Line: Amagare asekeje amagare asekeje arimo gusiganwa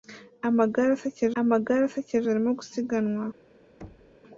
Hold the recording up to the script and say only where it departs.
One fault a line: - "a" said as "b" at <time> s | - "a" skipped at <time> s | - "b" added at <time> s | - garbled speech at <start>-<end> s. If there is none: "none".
none